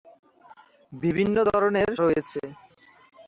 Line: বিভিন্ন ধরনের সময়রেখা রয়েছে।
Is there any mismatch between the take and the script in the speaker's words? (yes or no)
yes